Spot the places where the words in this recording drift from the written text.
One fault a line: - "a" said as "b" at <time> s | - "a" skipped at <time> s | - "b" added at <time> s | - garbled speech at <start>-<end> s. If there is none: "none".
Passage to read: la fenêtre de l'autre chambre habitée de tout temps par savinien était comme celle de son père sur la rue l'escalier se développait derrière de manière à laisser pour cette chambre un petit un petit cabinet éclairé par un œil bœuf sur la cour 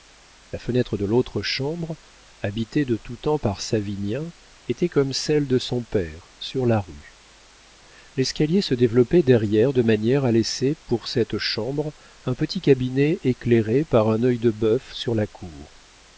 - "un petit" skipped at 12.6 s
- "de" added at 14.4 s